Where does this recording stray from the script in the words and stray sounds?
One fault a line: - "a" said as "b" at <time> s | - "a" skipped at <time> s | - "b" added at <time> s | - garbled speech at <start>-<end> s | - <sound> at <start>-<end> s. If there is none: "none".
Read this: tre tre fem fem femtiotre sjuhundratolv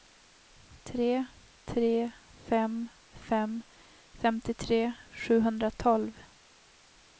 none